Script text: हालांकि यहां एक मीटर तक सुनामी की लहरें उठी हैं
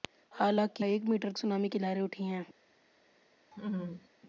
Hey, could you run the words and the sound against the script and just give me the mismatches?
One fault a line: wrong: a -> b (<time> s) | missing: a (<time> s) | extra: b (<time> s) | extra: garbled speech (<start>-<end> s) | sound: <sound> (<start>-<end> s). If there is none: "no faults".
missing: यहां (0.9 s)
missing: तक (1.3 s)
sound: laugh (3.5-4.1 s)